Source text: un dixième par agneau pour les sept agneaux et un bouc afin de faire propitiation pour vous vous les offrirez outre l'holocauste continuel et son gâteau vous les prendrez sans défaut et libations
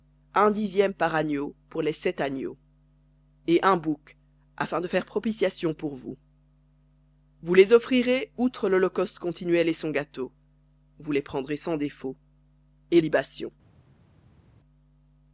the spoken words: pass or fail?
pass